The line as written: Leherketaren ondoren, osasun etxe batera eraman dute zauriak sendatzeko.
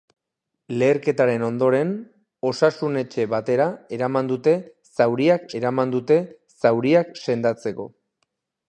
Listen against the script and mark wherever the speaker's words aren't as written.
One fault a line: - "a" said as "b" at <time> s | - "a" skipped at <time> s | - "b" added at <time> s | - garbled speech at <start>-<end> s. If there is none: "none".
- "eraman dute zauriak" added at 5.6 s